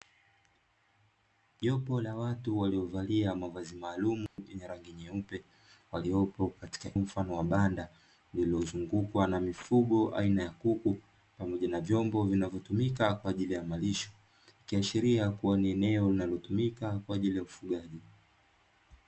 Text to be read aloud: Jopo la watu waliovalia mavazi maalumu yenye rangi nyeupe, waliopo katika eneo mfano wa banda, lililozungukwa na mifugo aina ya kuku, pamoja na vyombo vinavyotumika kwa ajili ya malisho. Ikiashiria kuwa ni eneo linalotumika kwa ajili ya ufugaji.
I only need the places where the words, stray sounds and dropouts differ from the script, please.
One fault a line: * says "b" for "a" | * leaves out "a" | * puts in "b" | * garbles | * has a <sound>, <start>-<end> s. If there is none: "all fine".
* has a dropout, 4.3-4.4 s
* leaves out "eneo"